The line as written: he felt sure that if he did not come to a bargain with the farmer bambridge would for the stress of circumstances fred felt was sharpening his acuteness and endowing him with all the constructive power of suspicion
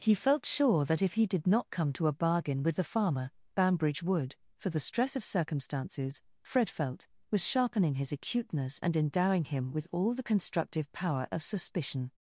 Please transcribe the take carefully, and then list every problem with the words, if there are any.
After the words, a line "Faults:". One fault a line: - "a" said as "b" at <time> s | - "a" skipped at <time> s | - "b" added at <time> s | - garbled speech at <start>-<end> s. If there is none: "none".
he felt sure that if he did not come to a bargain with the farmer bambridge would for the stress of circumstances fred felt was sharpening his acuteness and endowing him with all the constructive power of suspicion
Faults:
none